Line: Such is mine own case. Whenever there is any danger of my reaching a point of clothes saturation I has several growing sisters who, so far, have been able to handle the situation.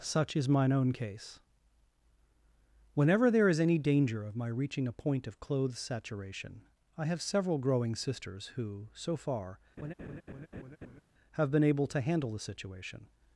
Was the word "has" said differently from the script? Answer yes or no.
yes